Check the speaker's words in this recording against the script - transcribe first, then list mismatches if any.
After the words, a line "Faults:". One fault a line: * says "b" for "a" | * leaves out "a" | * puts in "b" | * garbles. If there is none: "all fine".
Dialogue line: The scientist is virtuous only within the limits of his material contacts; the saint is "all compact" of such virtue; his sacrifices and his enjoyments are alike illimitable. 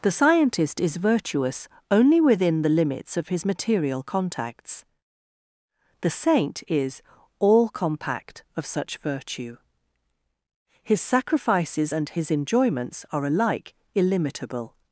The scientist is virtuous only within the limits of his material contacts; the saint is "all compact" of such virtue; his sacrifices and his enjoyments are alike illimitable.
Faults:
all fine